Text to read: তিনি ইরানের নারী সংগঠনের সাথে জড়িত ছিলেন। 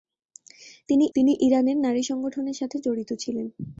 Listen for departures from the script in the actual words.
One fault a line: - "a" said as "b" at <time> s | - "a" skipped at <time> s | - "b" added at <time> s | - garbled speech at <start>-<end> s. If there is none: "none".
- "তিনি" added at 1.2 s